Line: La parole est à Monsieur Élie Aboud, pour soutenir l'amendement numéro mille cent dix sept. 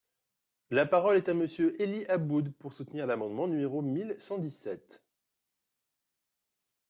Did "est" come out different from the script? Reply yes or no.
no